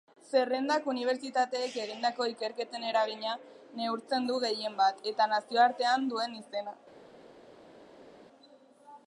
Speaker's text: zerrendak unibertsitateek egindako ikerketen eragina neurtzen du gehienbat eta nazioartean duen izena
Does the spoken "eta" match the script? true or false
true